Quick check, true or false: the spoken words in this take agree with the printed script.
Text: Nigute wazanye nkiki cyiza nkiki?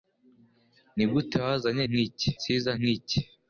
true